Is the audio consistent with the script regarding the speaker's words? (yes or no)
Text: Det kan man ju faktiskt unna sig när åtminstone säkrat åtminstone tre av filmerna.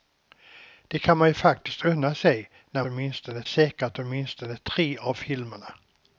yes